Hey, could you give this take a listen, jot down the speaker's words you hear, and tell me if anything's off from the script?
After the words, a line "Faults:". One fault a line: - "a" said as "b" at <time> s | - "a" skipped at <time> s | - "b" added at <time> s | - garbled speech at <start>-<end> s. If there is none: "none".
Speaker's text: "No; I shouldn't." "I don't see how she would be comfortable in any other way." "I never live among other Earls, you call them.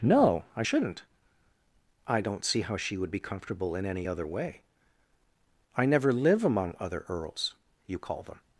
"No; I shouldn't." "I don't see how she would be comfortable in any other way." "I never live among other Earls, you call them.
Faults:
none